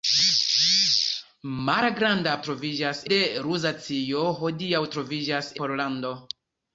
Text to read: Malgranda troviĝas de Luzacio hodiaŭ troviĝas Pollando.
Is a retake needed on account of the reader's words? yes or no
no